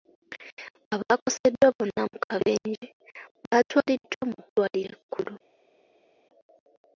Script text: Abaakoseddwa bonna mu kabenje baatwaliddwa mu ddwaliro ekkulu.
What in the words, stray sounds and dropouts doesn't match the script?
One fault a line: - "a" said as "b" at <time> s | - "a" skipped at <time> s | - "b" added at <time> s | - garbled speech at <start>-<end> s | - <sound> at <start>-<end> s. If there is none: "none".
none